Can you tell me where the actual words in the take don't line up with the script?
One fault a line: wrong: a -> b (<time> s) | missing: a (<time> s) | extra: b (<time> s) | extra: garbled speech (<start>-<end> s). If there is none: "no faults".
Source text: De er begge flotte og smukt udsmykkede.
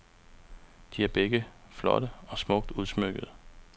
no faults